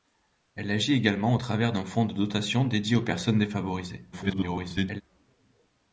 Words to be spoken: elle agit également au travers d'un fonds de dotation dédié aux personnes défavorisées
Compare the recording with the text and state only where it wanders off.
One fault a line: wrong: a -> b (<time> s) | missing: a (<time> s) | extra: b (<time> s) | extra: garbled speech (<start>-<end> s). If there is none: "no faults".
extra: garbled speech (4.1-5.0 s)